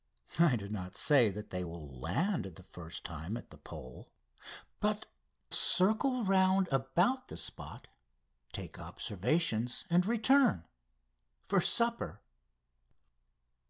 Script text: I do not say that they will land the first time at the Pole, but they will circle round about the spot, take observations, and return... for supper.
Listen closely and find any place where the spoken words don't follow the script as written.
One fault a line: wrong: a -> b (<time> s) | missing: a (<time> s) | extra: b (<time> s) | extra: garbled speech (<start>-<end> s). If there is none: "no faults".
missing: they will (5.1 s)